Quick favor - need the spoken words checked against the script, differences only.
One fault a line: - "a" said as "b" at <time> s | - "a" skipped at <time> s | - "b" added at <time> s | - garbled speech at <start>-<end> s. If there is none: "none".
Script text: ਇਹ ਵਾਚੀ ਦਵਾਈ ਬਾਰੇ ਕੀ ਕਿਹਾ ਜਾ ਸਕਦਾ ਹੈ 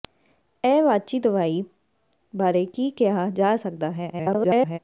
- garbled speech at 4.1-4.8 s